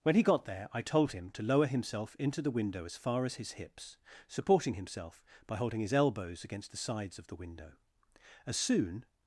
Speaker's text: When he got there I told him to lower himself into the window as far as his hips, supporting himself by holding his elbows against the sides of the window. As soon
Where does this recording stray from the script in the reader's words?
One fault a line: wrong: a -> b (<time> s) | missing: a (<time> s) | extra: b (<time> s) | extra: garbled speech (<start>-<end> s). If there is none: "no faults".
no faults